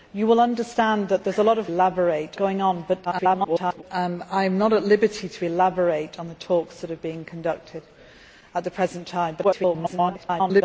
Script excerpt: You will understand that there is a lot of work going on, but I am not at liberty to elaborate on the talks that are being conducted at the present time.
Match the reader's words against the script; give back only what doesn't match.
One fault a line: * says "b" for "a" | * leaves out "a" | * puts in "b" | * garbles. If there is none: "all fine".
* says "elaborate" for "work"
* garbles
* garbles